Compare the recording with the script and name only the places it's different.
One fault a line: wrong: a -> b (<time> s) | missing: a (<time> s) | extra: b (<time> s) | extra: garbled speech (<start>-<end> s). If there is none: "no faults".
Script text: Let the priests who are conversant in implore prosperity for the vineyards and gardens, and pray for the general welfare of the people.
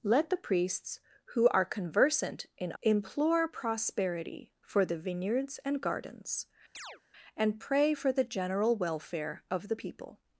no faults